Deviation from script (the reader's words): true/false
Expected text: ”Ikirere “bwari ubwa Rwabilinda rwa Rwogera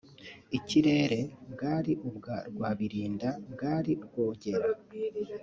true